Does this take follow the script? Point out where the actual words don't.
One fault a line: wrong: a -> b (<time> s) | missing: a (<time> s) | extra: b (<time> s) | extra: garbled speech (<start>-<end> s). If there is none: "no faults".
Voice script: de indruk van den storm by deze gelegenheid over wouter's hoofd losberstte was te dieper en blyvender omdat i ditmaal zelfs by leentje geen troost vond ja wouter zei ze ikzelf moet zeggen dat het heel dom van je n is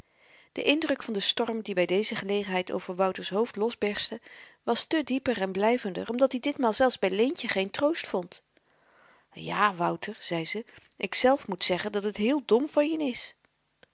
extra: die (1.6 s)